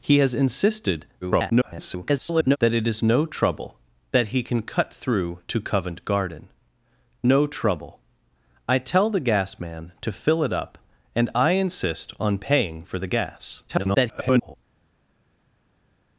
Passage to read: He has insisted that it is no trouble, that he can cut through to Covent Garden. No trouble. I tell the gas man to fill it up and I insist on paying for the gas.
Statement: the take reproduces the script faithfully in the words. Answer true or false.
false